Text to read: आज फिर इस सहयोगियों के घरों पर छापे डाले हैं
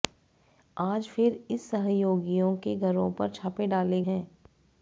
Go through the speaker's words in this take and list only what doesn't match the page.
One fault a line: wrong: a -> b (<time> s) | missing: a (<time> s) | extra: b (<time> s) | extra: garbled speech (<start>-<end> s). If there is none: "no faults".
no faults